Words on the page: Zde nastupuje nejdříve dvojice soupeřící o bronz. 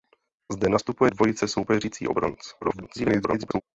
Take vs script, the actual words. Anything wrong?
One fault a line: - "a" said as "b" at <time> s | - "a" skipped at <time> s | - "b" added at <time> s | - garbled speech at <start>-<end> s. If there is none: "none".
- "nejdříve" skipped at 1.1 s
- garbled speech at 2.6-3.6 s